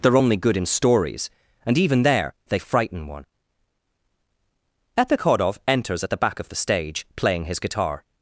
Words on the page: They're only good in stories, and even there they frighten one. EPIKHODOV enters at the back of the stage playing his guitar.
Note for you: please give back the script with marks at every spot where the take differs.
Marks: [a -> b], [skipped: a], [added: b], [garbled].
They're only good in stories, and even there they frighten one. EPIKHODOV enters at the back of the stage playing his guitar.